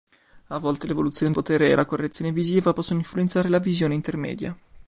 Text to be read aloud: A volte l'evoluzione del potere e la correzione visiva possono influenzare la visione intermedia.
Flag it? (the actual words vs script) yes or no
yes